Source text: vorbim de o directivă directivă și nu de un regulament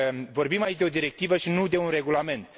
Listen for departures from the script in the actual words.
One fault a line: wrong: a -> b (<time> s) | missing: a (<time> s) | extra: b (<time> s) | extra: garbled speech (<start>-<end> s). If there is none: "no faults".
extra: aici (0.6 s)
missing: directivă (1.4 s)